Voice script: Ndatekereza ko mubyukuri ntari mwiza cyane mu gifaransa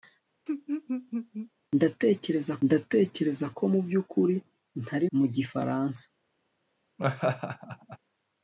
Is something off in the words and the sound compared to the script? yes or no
yes